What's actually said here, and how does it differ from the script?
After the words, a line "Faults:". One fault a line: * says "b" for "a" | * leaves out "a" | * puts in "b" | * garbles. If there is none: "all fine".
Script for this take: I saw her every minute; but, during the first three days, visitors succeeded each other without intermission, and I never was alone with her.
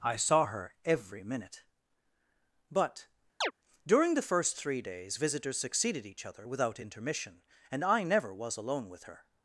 I saw her every minute; but, during the first three days, visitors succeeded each other without intermission, and I never was alone with her.
Faults:
all fine